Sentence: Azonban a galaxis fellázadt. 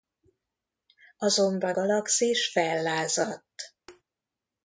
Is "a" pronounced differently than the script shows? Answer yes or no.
yes